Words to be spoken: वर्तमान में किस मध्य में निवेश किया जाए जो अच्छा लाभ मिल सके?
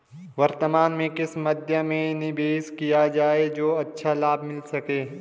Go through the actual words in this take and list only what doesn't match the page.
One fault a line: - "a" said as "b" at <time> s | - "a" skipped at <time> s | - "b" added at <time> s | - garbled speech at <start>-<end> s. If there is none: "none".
none